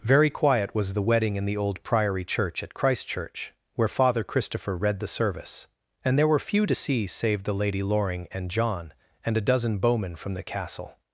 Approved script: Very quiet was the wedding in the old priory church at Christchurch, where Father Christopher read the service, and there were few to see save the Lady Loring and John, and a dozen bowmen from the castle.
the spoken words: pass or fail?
pass